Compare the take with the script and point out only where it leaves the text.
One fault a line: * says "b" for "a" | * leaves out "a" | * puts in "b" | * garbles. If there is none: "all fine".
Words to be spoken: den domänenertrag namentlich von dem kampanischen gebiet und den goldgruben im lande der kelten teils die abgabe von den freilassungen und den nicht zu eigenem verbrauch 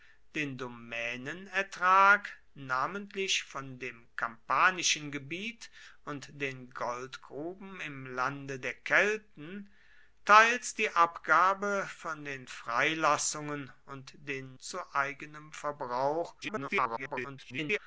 * leaves out "nicht"
* garbles